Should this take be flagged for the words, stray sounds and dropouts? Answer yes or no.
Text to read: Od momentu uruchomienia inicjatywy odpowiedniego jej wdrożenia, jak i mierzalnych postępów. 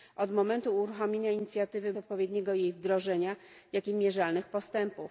no